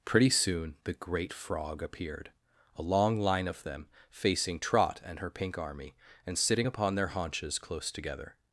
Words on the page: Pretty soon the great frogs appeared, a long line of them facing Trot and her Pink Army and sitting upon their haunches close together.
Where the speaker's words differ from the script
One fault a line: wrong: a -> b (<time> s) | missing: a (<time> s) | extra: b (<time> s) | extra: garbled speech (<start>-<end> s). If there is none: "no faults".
wrong: frogs -> frog (1.3 s)